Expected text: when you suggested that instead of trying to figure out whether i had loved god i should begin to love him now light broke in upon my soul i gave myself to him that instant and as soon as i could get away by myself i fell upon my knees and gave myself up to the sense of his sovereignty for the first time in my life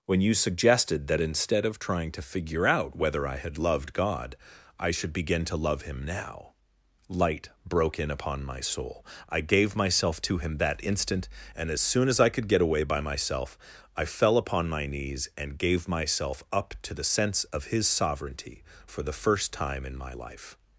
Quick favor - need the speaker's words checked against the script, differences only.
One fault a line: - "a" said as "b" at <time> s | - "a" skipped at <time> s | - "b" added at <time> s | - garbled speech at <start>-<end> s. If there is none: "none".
none